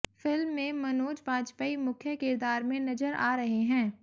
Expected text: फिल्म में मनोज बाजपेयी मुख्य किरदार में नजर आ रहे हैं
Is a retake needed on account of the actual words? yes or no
no